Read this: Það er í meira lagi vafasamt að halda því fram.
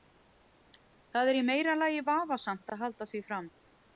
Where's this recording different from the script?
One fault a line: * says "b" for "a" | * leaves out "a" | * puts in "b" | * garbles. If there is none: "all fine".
all fine